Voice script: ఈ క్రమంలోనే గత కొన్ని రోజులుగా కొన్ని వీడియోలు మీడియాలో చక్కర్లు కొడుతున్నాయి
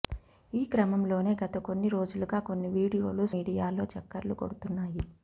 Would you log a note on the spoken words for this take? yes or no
no